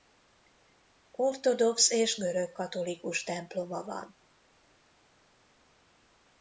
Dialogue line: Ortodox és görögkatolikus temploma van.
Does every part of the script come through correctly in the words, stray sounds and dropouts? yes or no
yes